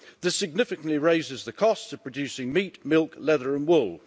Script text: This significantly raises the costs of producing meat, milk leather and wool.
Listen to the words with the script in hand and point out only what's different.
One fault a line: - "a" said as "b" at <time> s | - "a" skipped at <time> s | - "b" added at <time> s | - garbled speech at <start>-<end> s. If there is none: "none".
none